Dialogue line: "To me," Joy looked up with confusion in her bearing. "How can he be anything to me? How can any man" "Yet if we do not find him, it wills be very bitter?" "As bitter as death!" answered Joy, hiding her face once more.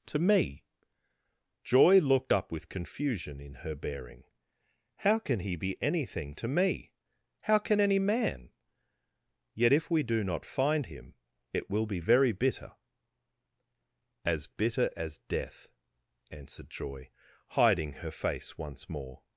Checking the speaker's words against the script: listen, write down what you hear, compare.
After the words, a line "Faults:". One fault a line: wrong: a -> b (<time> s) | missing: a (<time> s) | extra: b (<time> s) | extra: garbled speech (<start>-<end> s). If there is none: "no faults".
"To me," Joy looked up with confusion in her bearing. "How can he be anything to me? How can any man" "Yet if we do not find him, it will be very bitter?" "As bitter as death!" answered Joy, hiding her face once more.
Faults:
wrong: wills -> will (11.7 s)